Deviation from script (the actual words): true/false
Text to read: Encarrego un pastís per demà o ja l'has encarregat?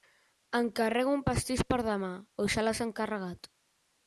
false